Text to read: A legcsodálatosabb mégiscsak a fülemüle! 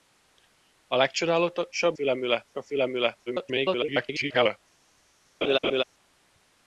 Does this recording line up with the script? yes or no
no